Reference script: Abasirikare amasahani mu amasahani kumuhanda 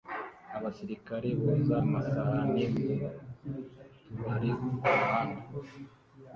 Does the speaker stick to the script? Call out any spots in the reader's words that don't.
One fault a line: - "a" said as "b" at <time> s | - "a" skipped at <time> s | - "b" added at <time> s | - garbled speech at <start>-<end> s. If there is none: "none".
- "boza" added at 1.4 s
- "amasahani" said as "tubari" at 4.0 s